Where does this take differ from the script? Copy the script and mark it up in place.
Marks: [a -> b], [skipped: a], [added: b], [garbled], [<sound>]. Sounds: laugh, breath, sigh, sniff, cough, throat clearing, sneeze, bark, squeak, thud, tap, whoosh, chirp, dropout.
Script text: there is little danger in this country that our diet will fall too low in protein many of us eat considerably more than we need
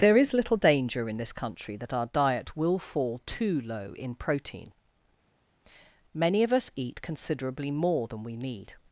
there is little danger in this country that our diet will fall too low in protein many of us eat considerably more than we need